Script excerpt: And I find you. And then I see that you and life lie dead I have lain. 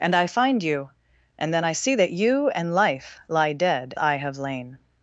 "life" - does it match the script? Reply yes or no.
yes